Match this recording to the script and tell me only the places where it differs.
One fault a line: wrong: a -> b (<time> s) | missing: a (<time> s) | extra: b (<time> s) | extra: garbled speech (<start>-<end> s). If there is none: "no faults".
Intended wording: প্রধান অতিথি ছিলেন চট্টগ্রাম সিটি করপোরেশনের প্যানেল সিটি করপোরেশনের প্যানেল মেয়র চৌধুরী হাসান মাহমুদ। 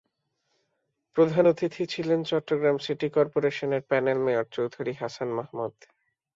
missing: সিটি করপোরেশনের প্যানেল (4.2 s)